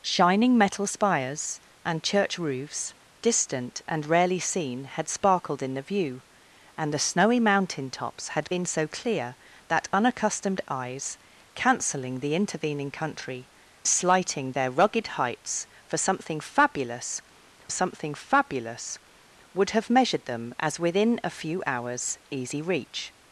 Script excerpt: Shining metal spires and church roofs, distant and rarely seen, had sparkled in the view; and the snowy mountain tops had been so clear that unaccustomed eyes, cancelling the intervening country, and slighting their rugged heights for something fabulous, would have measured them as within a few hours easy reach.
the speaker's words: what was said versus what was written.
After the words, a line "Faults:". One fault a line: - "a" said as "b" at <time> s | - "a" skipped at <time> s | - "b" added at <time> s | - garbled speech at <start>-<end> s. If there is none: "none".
Shining metal spires and church roofs, distant and rarely seen, had sparkled in the view; and the snowy mountain tops had been so clear that unaccustomed eyes, cancelling the intervening country, slighting their rugged heights for something fabulous something fabulous, would have measured them as within a few hours easy reach.
Faults:
- "and" skipped at 13.5 s
- "something fabulous" added at 17.7 s